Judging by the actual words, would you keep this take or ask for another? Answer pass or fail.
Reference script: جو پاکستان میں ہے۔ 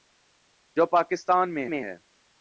fail